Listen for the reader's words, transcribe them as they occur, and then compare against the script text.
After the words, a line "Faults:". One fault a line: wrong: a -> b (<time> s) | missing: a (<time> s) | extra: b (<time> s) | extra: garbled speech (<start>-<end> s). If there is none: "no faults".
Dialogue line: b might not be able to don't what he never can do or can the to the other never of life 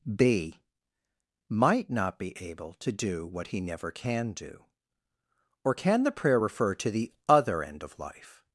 b might not be able to do what he never can do or can the prayer refer to the other end of life
Faults:
wrong: don't -> do (2.9 s)
extra: prayer refer (6.1 s)
wrong: never -> end (7.6 s)